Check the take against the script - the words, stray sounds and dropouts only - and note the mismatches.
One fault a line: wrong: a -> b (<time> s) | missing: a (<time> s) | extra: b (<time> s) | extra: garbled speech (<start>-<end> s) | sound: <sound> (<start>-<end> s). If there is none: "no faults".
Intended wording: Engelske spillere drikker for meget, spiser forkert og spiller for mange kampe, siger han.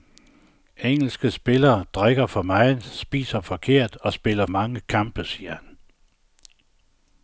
missing: for (4.5 s)